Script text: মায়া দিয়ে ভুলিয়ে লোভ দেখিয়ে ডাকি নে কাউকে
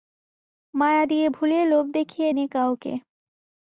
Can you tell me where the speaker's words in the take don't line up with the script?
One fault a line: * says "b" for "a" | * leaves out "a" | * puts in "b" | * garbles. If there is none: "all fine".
* leaves out "ডাকি"